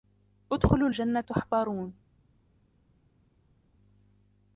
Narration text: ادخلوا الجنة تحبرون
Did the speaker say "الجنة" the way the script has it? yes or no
yes